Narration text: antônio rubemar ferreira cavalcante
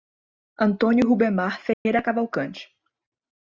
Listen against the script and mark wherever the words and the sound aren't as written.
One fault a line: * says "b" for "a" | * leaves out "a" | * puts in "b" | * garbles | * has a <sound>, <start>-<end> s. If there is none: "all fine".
* has a dropout, 1.7-1.9 s